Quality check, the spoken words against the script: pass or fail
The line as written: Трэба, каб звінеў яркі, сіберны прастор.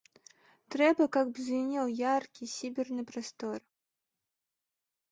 pass